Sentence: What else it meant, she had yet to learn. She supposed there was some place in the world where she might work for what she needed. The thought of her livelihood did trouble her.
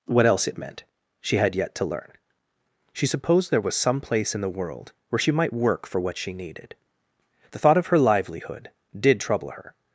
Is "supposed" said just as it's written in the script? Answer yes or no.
yes